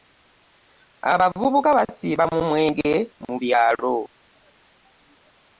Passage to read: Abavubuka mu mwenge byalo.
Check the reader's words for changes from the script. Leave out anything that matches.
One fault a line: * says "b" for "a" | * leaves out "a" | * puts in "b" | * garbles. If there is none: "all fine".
* puts in "basiiba"
* puts in "mu"